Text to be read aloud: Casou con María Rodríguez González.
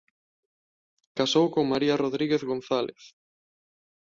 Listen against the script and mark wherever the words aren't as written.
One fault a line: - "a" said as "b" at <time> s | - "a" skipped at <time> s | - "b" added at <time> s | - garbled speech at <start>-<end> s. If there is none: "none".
none